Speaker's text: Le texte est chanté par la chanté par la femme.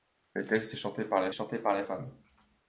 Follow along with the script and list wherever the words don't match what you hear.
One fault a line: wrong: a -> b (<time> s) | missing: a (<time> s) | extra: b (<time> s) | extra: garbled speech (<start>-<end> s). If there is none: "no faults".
no faults